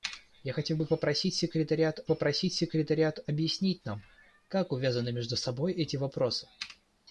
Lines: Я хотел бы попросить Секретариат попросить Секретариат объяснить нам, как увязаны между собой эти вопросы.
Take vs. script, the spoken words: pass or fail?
pass